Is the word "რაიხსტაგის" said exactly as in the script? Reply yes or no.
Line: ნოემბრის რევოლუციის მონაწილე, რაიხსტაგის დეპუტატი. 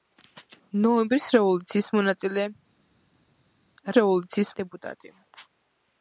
no